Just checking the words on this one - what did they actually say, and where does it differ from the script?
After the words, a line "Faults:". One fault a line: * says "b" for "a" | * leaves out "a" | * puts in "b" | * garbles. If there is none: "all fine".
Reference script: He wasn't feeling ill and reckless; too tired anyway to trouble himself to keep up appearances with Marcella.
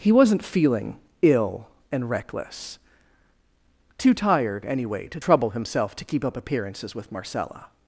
He wasn't feeling ill and reckless; too tired anyway to trouble himself to keep up appearances with Marcella.
Faults:
all fine